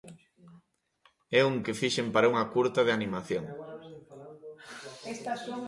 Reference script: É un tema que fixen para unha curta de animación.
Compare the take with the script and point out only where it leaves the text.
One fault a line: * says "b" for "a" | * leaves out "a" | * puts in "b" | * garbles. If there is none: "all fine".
* leaves out "tema"